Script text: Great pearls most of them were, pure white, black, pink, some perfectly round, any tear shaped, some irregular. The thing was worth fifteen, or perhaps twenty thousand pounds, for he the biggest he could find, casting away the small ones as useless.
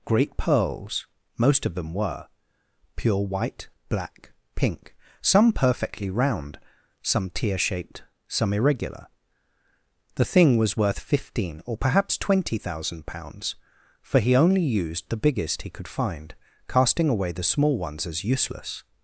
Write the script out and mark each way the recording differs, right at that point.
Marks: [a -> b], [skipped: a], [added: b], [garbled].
Great pearls most of them were, pure white, black, pink, some perfectly round, [any -> some] tear shaped, some irregular. The thing was worth fifteen, or perhaps twenty thousand pounds, for he [added: only used] the biggest he could find, casting away the small ones as useless.